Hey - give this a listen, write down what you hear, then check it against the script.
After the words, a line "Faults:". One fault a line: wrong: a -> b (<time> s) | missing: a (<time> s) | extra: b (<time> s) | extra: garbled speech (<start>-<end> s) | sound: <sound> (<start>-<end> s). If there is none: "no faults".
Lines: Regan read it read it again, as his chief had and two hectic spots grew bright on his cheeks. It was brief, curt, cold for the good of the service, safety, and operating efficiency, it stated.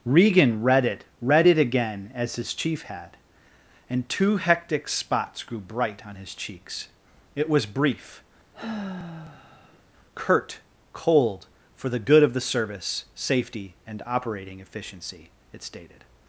Regan read it read it again, as his chief had and two hectic spots grew bright on his cheeks. It was brief, curt, cold for the good of the service, safety, and operating efficiency, it stated.
Faults:
sound: sigh (8.5-9.8 s)